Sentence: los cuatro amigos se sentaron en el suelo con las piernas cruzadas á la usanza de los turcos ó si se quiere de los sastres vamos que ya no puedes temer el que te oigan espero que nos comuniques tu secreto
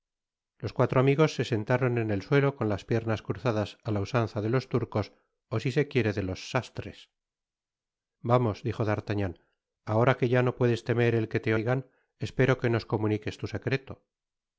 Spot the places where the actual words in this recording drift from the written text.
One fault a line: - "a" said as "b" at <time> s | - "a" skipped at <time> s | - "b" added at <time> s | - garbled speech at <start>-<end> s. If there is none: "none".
- "dijo d'artagnan ahora" added at 8.7 s